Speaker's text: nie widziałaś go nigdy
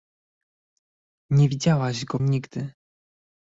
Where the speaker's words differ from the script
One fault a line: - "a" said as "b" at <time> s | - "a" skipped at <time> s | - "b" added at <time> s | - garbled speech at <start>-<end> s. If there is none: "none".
none